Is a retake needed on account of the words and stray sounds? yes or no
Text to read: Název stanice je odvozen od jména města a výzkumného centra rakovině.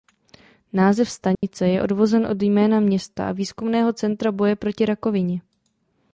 yes